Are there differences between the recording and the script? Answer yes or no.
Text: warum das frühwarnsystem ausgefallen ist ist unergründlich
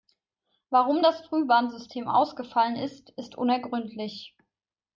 no